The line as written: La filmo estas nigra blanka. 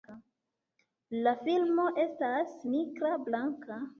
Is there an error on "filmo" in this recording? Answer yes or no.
no